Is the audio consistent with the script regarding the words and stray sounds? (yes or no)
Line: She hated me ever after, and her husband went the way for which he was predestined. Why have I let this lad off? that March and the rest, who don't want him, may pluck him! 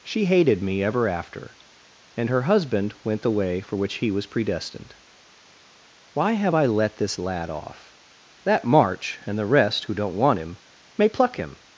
yes